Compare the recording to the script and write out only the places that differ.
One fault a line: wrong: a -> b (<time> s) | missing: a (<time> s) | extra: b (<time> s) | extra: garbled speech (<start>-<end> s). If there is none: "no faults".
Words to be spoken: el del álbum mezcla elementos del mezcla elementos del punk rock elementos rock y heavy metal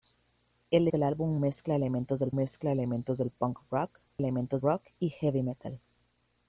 no faults